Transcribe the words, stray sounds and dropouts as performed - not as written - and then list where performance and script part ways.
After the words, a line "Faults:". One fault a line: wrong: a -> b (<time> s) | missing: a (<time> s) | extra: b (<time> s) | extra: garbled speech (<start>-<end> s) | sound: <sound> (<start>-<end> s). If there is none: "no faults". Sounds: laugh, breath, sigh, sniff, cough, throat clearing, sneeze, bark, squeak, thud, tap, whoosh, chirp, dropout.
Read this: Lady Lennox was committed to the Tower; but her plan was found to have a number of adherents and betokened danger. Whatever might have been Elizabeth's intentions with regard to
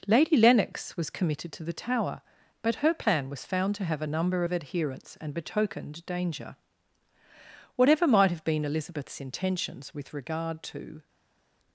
Lady Lennox was committed to the Tower; but her plan was found to have a number of adherents and betokened danger. Whatever might have been Elizabeth's intentions with regard to
Faults:
no faults